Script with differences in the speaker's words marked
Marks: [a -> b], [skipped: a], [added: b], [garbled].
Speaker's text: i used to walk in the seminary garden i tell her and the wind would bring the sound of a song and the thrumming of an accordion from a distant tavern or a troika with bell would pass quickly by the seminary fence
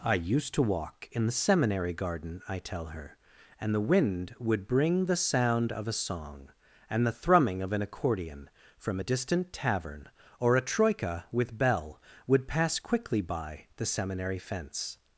i used to walk in the seminary garden i tell her and the wind would bring the sound of a song and the thrumming of an accordion from a distant tavern or a troika with bell would pass quickly by the seminary fence